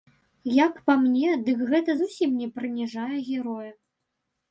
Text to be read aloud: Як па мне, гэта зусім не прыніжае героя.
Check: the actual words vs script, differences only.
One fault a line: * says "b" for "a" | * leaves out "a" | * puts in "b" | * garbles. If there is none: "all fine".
* puts in "дык"